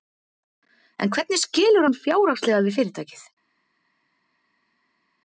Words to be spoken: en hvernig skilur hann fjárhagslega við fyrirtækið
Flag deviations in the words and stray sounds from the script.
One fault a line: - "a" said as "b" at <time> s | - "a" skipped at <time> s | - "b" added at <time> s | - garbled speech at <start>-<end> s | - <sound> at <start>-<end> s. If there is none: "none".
none